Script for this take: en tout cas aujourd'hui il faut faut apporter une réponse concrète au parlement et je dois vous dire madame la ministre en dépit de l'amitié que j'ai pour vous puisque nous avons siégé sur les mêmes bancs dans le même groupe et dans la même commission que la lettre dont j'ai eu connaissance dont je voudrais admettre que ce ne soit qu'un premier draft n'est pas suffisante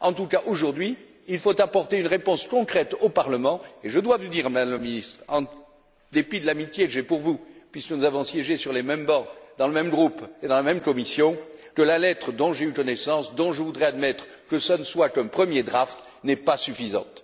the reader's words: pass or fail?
fail